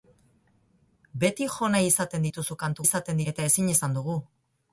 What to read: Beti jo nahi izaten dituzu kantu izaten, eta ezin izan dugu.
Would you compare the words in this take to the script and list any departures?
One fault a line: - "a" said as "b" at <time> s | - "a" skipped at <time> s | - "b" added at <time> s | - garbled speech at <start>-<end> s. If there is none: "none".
none